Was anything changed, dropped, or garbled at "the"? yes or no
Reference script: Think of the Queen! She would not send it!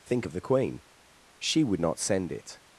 no